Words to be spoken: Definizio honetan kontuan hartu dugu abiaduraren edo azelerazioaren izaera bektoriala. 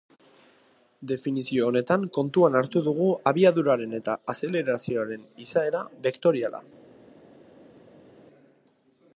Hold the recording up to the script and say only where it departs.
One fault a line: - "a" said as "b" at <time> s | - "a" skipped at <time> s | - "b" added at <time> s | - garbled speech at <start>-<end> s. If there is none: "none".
- "edo" said as "eta" at 4.0 s